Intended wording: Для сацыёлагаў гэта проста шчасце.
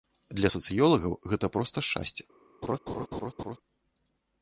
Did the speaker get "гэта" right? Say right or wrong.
right